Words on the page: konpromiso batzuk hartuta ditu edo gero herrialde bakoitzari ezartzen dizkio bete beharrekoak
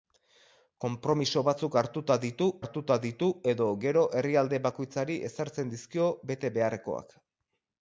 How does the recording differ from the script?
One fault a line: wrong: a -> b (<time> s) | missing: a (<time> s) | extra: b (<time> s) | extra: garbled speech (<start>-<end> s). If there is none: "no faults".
extra: hartuta ditu (2.6 s)